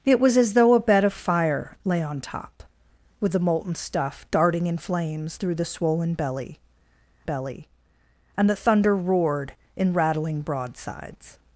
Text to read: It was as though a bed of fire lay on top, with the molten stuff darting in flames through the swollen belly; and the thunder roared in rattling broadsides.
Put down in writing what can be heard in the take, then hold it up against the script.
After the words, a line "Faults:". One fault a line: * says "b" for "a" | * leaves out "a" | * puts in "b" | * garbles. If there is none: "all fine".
It was as though a bed of fire lay on top, with the molten stuff darting in flames through the swollen belly belly; and the thunder roared in rattling broadsides.
Faults:
* puts in "belly"